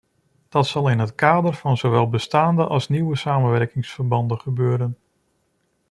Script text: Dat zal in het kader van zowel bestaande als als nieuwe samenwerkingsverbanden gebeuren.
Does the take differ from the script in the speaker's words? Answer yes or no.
yes